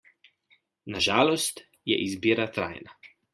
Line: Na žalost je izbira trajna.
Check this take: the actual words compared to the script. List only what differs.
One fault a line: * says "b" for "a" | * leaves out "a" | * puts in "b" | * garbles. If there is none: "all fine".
all fine